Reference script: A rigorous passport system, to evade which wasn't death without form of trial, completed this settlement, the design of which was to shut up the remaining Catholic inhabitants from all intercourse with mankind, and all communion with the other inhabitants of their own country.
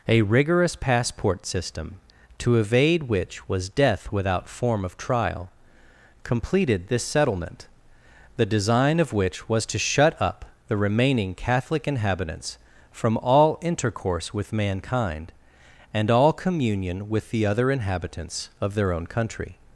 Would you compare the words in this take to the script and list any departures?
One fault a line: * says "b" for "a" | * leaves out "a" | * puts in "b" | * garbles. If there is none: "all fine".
* says "was" for "wasn't"